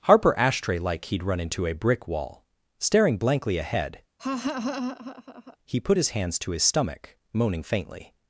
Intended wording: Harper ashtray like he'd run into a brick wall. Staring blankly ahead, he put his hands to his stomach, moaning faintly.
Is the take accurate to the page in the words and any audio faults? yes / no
no